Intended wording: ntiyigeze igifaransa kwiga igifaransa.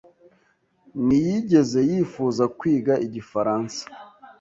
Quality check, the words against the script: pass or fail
fail